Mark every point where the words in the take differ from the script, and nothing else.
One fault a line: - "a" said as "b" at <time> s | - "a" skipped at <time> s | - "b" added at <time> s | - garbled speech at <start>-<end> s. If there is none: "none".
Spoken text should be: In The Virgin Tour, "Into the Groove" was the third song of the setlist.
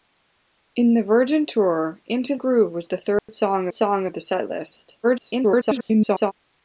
- "the" skipped at 2.4 s
- "song" added at 3.7 s
- garbled speech at 5.0-6.3 s